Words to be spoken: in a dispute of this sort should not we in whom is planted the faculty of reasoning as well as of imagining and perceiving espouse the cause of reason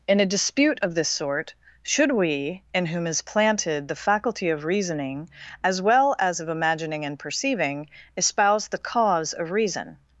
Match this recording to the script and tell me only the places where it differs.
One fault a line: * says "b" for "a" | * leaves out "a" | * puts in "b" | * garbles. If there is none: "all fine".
* leaves out "not"